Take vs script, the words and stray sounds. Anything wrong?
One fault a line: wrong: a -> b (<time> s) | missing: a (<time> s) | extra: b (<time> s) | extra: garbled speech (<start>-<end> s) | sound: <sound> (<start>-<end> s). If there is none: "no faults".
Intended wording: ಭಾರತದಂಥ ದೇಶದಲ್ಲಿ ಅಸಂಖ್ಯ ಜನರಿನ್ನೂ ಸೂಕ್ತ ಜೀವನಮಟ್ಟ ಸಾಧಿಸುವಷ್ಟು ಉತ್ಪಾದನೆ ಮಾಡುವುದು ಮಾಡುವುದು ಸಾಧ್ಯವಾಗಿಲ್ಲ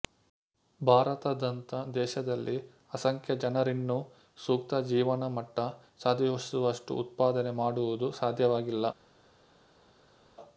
missing: ಮಾಡುವುದು (8.1 s)